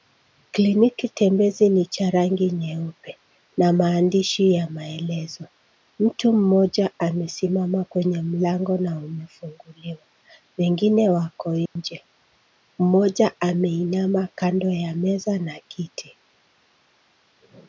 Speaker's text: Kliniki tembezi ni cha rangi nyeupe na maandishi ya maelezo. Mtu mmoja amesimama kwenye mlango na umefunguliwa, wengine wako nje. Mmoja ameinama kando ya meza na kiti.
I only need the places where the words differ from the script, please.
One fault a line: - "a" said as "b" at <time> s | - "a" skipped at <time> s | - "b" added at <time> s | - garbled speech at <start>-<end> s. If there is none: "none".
none